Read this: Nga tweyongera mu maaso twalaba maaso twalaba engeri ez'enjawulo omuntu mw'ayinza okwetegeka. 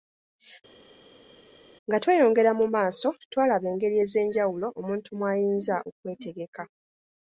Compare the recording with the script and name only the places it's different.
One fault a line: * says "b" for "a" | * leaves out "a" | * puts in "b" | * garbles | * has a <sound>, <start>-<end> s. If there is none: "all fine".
* leaves out "maaso twalaba"